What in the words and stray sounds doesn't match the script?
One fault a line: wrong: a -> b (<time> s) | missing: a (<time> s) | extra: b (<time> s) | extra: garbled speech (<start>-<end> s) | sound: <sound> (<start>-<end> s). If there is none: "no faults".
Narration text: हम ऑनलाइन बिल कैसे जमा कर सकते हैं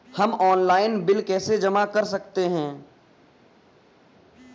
no faults